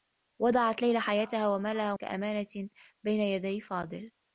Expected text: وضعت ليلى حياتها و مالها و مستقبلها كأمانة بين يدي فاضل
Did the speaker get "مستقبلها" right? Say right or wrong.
wrong